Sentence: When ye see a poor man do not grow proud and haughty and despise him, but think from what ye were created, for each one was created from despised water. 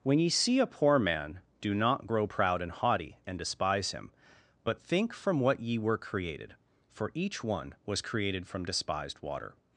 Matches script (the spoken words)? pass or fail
pass